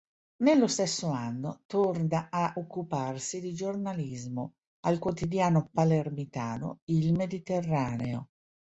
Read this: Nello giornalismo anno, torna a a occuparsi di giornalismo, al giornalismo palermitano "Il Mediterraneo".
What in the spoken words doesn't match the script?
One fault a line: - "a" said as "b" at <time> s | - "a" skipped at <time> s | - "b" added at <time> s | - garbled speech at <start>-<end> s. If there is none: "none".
- "giornalismo" said as "stesso" at 0.7 s
- "a" skipped at 2.5 s
- "giornalismo" said as "quotidiano" at 5.0 s